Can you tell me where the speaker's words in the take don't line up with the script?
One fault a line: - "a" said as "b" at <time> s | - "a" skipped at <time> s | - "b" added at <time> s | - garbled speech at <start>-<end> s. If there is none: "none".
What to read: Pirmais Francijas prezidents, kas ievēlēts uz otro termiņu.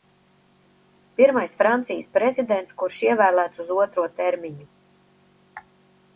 - "kas" said as "kurš" at 2.8 s